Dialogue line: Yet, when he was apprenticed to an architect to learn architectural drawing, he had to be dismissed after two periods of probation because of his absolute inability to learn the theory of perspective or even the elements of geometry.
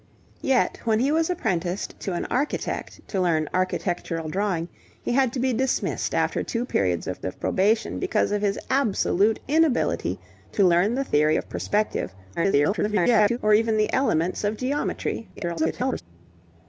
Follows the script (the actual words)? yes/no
no